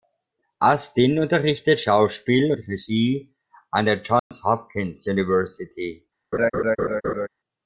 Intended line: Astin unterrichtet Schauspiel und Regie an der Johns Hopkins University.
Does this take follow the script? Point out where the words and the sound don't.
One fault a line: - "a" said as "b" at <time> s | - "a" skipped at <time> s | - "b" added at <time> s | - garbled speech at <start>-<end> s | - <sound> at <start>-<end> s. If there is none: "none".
- dropout at 4.2-4.3 s
- laugh at 6.3-7.3 s